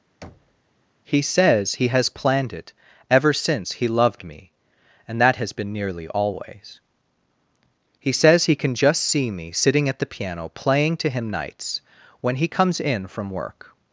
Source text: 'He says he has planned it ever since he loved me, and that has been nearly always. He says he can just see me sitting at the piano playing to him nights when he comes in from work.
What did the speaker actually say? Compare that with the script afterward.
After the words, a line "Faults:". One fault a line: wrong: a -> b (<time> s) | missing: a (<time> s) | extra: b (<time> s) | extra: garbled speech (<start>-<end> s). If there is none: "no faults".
'He says he has planned it ever since he loved me, and that has been nearly always. He says he can just see me sitting at the piano playing to him nights when he comes in from work.
Faults:
no faults